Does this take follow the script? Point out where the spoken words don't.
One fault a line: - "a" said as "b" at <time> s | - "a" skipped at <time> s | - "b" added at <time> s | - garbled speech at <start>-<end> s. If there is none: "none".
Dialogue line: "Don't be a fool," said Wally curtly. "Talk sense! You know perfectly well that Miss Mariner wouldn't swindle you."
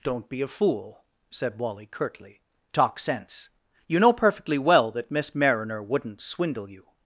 none